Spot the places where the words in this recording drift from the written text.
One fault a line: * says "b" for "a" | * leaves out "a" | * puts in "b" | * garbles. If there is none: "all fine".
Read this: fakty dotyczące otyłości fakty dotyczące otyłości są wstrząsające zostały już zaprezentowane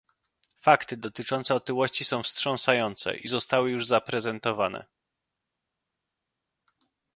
* leaves out "fakty dotyczące otyłości"
* puts in "i"